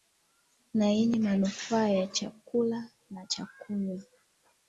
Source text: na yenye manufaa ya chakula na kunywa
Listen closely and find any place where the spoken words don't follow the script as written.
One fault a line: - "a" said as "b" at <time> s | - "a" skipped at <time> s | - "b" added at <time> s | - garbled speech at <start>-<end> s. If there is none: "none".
- "cha" added at 3.2 s